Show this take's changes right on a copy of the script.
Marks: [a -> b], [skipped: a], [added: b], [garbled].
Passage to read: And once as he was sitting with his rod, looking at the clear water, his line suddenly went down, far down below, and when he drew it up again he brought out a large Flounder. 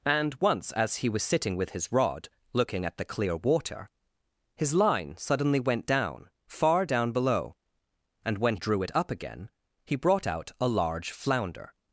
And once as he was sitting with his rod, looking at the clear water, his line suddenly went down, far down below, and when [skipped: he] drew it up again he brought out a large Flounder.